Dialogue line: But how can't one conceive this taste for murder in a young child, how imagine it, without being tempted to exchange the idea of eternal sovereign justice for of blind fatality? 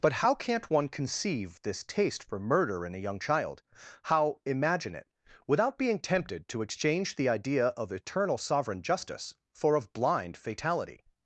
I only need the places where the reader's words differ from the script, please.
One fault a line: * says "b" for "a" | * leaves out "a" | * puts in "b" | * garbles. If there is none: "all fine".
all fine